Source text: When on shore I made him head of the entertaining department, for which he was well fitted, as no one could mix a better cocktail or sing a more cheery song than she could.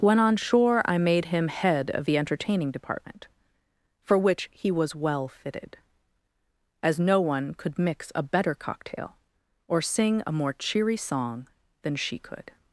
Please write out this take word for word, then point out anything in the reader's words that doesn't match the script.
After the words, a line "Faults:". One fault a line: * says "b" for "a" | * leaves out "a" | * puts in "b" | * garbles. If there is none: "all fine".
When on shore I made him head of the entertaining department, for which he was well fitted, as no one could mix a better cocktail or sing a more cheery song than she could.
Faults:
all fine